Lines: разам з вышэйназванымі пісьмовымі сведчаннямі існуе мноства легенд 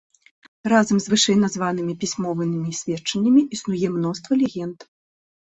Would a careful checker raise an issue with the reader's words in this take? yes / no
no